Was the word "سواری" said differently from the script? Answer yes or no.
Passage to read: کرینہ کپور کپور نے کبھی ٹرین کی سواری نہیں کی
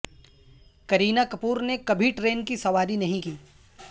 no